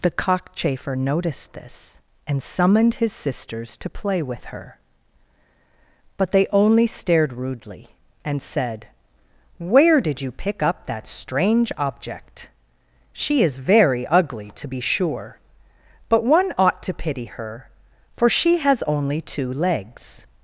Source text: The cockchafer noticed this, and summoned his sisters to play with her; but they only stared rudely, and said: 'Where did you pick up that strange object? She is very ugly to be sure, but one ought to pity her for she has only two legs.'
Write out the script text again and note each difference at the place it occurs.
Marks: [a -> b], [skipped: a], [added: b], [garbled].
The cockchafer noticed this, and summoned his sisters to play with her; but they only stared rudely, and said: 'Where did you pick up that strange object? She is very ugly to be sure, but one ought to pity her for she has only two legs.'